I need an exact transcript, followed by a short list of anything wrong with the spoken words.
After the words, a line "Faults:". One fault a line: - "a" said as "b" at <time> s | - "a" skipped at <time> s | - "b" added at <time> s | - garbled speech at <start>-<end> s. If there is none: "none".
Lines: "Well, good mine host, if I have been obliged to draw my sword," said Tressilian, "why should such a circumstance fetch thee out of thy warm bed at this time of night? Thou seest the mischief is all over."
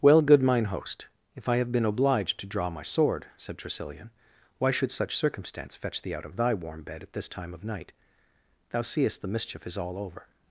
"Well, good mine host, if I have been obliged to draw my sword," said Tressilian, "why should such circumstance fetch thee out of thy warm bed at this time of night? Thou seest the mischief is all over."
Faults:
- "a" skipped at 5.2 s